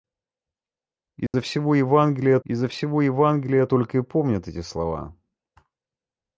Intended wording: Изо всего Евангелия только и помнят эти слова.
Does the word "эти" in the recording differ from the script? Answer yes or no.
no